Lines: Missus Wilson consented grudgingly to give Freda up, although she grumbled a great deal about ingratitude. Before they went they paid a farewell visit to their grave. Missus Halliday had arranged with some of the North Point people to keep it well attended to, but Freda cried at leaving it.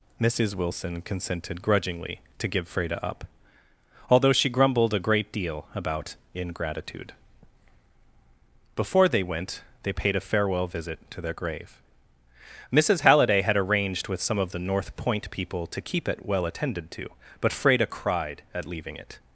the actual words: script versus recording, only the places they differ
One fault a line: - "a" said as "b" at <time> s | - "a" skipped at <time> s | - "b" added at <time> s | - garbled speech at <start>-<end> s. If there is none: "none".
none